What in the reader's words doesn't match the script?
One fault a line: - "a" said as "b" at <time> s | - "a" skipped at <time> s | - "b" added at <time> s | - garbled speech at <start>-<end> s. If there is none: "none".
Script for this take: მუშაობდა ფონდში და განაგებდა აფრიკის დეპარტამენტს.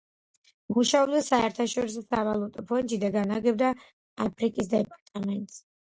- "საერთაშორისო სავალუტო" added at 1.2 s